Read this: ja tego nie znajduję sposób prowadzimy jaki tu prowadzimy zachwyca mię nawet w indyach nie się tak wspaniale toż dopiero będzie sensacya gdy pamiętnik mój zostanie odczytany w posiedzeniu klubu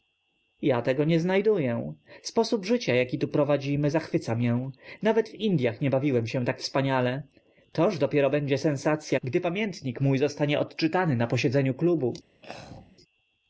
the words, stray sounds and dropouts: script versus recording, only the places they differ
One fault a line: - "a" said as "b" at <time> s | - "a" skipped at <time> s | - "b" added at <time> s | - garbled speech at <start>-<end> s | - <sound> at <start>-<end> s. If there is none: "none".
- "prowadzimy" said as "życia" at 2.6 s
- "bawiłem" added at 5.9 s
- "w" said as "na" at 11.2 s
- throat clearing at 12.4-13.0 s